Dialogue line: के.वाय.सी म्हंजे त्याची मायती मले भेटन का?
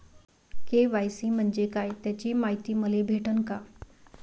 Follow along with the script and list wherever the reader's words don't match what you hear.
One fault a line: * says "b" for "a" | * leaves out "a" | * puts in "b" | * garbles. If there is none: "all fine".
* puts in "काय"